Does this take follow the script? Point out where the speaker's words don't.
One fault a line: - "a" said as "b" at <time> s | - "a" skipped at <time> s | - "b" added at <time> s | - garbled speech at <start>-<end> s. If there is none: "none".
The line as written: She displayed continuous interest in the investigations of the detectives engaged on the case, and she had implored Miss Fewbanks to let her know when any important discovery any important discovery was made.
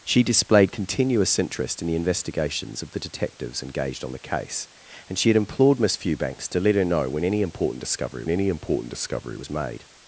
none